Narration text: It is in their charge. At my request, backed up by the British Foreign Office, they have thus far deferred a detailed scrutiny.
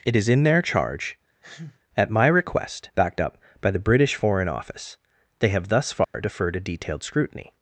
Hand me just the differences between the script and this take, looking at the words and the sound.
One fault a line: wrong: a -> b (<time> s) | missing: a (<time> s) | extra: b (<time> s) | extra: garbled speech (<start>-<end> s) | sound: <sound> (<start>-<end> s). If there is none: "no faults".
sound: sneeze (1.4-1.8 s)
sound: dropout (6.0-6.1 s)